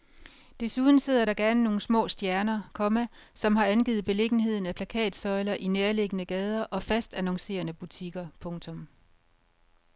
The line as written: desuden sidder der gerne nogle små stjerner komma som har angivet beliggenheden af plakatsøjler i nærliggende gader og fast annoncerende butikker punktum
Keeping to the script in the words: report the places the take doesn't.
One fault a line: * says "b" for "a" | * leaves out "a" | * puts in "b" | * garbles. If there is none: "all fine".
all fine